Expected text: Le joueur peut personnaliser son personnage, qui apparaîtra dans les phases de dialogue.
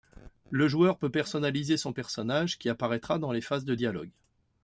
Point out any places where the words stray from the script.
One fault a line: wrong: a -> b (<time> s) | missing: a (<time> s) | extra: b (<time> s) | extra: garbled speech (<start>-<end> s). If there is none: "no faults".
no faults